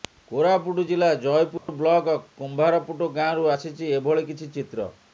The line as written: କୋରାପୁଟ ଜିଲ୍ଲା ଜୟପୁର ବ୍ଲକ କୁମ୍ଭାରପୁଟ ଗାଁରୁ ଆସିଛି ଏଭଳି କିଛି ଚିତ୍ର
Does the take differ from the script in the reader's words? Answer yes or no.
no